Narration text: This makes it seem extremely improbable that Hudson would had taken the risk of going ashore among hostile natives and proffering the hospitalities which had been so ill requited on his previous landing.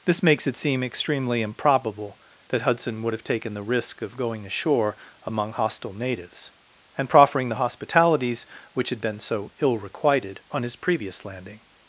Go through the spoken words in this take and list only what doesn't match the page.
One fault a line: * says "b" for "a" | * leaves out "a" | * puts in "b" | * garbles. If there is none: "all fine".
* says "have" for "had"